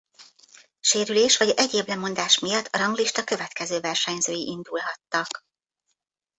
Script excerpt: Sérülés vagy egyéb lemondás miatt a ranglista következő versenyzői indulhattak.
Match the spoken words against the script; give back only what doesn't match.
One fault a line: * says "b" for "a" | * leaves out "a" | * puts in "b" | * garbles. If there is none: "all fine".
all fine